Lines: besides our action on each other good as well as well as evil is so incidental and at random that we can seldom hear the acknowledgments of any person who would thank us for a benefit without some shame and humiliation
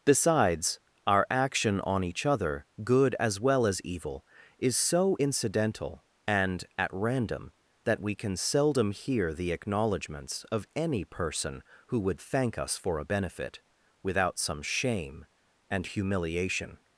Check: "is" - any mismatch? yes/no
no